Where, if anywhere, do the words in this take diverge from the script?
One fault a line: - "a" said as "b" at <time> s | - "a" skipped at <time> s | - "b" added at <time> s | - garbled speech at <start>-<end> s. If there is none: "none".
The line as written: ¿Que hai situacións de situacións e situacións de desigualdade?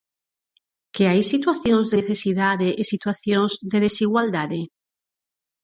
- "situacións" said as "necesidade" at 2.0 s